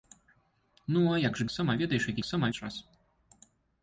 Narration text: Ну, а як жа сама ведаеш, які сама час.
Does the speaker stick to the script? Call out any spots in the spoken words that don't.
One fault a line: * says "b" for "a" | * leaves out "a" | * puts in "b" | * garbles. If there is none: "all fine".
all fine